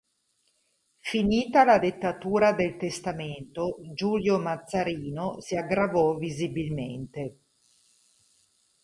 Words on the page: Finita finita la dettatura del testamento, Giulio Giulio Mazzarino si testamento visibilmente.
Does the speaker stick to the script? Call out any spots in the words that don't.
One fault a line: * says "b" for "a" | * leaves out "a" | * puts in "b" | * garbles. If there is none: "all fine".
* leaves out "finita"
* leaves out "Giulio"
* says "aggravò" for "testamento"